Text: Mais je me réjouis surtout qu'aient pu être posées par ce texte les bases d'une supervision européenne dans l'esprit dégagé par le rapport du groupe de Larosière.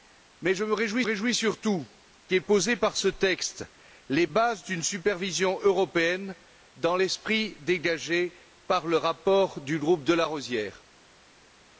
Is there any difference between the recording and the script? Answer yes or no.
yes